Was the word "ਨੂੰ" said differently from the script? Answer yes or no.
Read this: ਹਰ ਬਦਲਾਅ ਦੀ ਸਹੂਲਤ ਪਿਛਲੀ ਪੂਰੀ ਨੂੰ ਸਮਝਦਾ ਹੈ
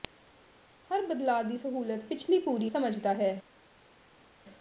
yes